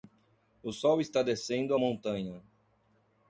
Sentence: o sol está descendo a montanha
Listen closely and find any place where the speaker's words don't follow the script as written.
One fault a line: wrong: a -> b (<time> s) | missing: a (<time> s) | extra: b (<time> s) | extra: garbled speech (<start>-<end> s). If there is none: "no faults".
no faults